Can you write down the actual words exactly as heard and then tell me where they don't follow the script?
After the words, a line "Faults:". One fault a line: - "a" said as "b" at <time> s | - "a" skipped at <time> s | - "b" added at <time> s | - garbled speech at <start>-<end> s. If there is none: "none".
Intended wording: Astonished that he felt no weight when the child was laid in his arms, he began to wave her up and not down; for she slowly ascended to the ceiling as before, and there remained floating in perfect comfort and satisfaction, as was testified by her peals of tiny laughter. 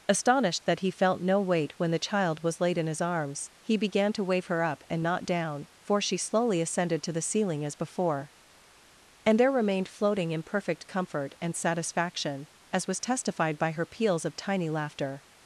Astonished that he felt no weight when the child was laid in his arms, he began to wave her up and not down; for she slowly ascended to the ceiling as before, and there remained floating in perfect comfort and satisfaction, as was testified by her peals of tiny laughter.
Faults:
none